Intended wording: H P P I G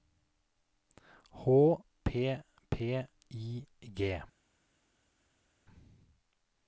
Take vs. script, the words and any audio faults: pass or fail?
pass